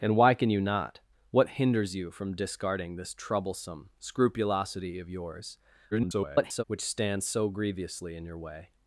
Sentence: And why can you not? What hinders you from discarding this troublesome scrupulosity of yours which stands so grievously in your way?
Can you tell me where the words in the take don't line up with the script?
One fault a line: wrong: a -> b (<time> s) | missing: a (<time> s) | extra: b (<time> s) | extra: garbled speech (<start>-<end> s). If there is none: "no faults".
extra: garbled speech (5.9-6.6 s)